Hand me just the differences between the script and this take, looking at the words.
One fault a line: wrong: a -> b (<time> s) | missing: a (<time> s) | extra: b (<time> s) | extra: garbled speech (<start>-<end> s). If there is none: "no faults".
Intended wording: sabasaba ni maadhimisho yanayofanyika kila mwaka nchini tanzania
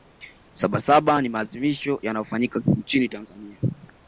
missing: kila mwaka (2.6 s)